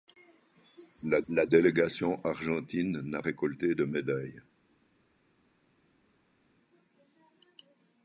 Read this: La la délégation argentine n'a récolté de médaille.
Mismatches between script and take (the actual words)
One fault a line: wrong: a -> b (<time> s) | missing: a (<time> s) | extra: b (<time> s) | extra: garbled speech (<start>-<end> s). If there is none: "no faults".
no faults